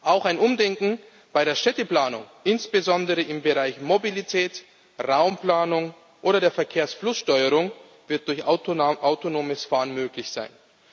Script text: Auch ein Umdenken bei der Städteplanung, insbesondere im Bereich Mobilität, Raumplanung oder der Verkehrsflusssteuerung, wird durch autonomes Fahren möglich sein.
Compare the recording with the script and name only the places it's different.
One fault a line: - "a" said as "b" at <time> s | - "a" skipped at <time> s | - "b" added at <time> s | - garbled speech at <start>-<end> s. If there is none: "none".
none